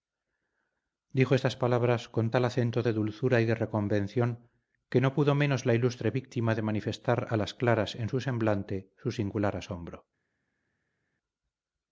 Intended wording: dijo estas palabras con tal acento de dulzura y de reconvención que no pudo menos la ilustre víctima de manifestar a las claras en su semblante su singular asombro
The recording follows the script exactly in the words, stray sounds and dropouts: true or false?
true